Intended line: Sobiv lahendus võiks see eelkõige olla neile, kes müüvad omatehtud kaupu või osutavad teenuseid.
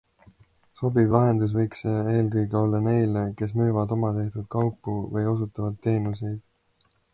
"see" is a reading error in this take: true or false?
false